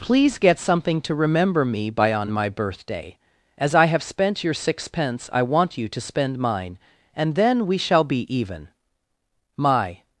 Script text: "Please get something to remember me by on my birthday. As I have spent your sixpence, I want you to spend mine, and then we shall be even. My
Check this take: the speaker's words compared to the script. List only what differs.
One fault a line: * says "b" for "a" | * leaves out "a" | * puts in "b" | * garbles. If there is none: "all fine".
all fine